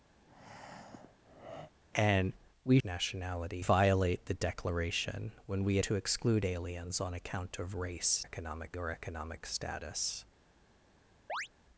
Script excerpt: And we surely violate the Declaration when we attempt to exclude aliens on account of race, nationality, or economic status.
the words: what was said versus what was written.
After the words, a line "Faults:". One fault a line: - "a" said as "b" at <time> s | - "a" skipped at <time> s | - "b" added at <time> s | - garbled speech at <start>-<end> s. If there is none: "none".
And we nationality violate the Declaration when we to exclude aliens on account of race, economic, or economic status.
Faults:
- "surely" said as "nationality" at 2.8 s
- "attempt" skipped at 5.8 s
- "nationality" said as "economic" at 8.2 s